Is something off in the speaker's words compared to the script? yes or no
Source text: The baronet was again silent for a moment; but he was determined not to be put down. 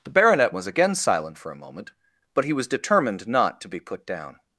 no